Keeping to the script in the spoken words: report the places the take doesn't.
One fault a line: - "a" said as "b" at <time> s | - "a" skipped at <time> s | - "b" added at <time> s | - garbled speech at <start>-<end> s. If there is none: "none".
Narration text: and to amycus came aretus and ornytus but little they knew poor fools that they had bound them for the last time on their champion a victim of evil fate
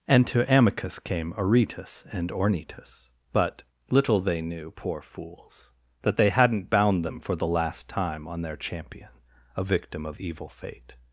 - "had" said as "hadn't" at 6.3 s